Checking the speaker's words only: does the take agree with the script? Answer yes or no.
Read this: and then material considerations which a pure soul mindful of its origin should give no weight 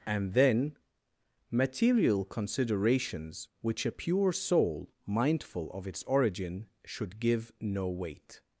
yes